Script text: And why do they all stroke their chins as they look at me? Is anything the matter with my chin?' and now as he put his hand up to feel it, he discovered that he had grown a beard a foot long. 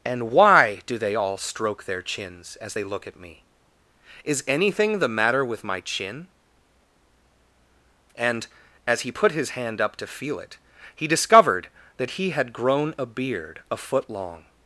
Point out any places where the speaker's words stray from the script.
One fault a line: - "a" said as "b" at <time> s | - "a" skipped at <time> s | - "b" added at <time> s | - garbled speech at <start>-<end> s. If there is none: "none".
- "now" skipped at 8.5 s